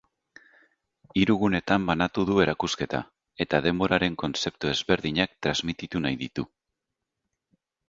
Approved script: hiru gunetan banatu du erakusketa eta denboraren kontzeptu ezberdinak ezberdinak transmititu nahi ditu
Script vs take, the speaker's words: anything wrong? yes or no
yes